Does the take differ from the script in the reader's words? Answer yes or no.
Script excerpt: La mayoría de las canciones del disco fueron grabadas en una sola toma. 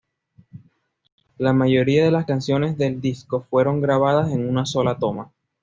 no